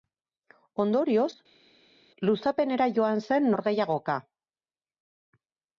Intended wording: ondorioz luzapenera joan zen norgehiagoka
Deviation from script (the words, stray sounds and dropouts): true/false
false